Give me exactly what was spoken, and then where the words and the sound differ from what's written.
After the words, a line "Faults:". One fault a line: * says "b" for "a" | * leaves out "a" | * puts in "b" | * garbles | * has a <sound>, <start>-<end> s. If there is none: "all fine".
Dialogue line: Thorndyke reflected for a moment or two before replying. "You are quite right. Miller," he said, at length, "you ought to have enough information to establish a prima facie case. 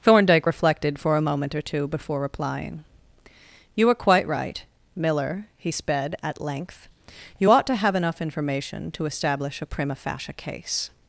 Thorndyke reflected for a moment or two before replying. "You are quite right. Miller," he sped, at length, "you ought to have enough information to establish a prima facie case.
Faults:
* says "sped" for "said"